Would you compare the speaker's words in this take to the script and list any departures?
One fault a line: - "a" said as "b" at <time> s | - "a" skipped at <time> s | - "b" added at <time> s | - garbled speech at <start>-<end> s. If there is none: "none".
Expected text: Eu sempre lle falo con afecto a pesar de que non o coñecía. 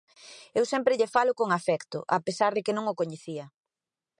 none